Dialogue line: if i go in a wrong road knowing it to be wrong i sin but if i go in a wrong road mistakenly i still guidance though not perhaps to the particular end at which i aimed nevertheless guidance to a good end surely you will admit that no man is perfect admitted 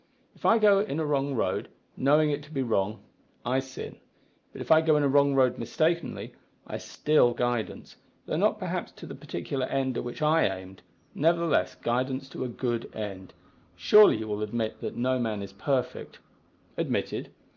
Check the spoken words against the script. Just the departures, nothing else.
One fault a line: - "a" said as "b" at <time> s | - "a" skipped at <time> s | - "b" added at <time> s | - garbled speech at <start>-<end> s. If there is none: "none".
none